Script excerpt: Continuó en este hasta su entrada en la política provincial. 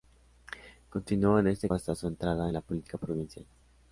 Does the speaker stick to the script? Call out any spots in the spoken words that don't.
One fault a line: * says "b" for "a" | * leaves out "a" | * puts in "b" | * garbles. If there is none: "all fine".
all fine